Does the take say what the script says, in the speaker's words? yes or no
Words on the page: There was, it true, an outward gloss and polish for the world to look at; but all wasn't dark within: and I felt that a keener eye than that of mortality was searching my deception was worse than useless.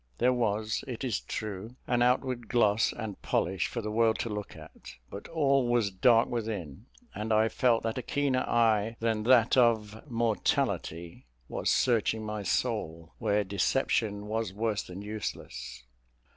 no